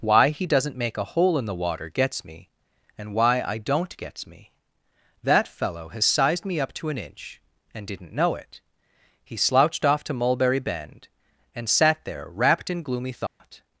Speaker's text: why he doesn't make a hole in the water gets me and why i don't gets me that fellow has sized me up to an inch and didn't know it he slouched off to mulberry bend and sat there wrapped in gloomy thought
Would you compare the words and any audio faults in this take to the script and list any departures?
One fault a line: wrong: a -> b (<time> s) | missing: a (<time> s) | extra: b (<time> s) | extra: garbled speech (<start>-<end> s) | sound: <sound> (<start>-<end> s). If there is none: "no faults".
sound: dropout (13.3-13.4 s)